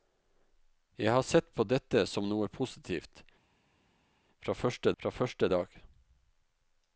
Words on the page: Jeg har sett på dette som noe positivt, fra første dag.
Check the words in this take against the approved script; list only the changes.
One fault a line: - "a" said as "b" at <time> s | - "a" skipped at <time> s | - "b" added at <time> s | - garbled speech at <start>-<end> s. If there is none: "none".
- "fra første" added at 5.0 s